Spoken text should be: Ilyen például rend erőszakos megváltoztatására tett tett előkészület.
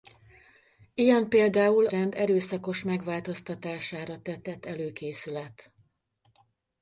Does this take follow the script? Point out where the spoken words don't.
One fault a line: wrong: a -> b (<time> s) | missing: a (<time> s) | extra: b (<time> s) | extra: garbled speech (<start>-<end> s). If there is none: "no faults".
no faults